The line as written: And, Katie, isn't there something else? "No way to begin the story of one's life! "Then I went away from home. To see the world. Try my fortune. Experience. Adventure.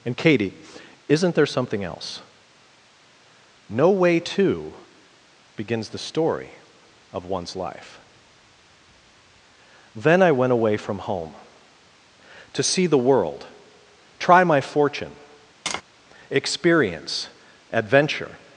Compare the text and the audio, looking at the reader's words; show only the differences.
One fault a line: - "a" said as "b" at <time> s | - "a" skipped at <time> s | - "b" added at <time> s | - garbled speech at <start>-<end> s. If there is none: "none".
- "begin" said as "begins" at 5.6 s